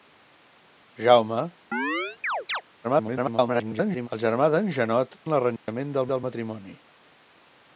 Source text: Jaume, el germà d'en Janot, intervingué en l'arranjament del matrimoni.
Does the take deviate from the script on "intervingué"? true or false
true